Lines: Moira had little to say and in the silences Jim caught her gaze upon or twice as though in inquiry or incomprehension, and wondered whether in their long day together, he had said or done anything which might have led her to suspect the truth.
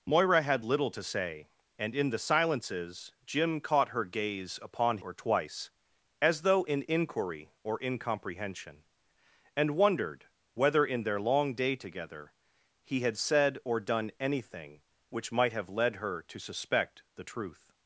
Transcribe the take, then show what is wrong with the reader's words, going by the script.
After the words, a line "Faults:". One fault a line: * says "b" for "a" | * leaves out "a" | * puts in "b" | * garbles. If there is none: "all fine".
Moira had little to say and in the silences Jim caught her gaze upon or twice as though in inquiry or incomprehension, and wondered whether in their long day together, he had said or done anything which might have led her to suspect the truth.
Faults:
all fine